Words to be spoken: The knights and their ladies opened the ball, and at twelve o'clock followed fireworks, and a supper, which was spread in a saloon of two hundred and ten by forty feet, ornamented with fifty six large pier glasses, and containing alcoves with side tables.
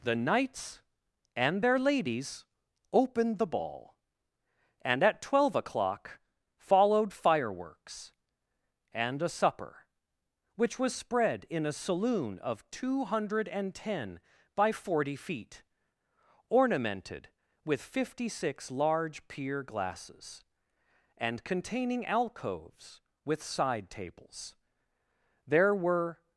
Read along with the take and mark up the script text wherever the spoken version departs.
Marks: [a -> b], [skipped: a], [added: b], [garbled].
The knights and their ladies opened the ball, and at twelve o'clock followed fireworks, and a supper, which was spread in a saloon of two hundred and ten by forty feet, ornamented with fifty six large pier glasses, and containing alcoves with side tables. [added: There were]